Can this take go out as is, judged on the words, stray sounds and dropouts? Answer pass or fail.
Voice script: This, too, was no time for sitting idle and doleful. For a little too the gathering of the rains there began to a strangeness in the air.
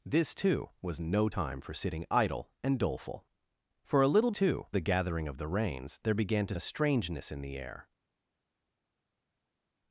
pass